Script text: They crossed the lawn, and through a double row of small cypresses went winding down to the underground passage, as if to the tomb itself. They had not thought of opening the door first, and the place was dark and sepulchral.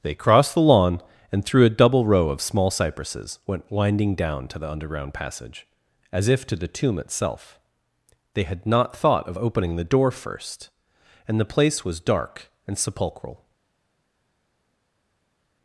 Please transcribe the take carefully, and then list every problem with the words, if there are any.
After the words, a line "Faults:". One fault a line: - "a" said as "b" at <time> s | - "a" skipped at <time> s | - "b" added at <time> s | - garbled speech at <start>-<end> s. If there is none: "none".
They crossed the lawn, and through a double row of small cypresses went winding down to the underground passage, as if to the tomb itself. They had not thought of opening the door first, and the place was dark and sepulchral.
Faults:
none